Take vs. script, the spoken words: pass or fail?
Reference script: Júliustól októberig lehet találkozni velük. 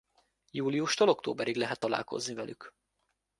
pass